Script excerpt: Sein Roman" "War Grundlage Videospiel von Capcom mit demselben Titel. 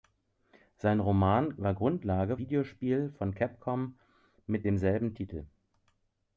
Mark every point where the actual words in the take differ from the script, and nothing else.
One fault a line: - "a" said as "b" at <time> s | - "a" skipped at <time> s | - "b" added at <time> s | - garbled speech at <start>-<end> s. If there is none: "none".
none